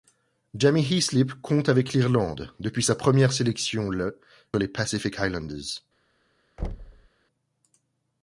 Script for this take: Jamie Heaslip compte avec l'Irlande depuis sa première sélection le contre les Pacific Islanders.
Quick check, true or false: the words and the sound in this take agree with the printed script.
false